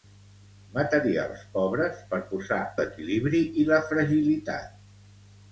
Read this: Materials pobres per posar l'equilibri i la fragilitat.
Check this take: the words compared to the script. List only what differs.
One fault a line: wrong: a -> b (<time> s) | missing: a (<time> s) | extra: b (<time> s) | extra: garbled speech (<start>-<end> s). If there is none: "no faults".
no faults